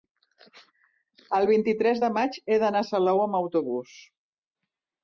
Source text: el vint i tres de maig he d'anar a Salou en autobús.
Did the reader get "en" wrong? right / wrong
wrong